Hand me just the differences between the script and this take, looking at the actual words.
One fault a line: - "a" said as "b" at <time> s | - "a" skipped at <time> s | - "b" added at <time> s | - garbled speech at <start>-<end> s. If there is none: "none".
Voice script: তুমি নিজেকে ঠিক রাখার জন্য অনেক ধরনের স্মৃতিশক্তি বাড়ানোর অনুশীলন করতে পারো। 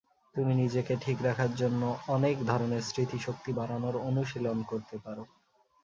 none